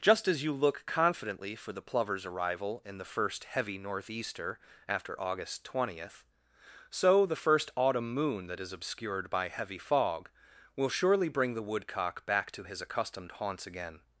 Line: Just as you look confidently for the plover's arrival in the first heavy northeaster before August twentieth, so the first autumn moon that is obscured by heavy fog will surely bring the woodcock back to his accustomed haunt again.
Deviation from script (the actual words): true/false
true